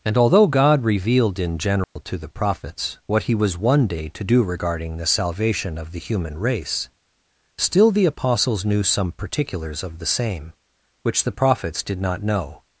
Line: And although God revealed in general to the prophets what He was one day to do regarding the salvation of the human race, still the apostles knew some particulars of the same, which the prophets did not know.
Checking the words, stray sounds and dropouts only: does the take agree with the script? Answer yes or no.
no